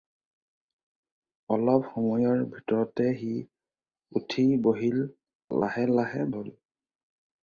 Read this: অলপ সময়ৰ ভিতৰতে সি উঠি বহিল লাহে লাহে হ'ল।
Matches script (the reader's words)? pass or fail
pass